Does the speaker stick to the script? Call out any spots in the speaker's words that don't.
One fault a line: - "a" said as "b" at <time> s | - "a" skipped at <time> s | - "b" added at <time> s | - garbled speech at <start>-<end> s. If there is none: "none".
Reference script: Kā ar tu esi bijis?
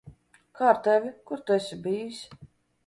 - "tevi kur" added at 0.9 s